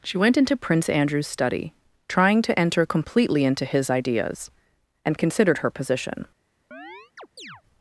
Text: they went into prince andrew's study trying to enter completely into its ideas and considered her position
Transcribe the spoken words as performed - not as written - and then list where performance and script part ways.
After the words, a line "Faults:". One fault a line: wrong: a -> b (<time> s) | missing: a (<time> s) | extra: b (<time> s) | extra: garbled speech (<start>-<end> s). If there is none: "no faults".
she went into prince andrew's study trying to enter completely into his ideas and considered her position
Faults:
wrong: they -> she (0.0 s)
wrong: its -> his (3.6 s)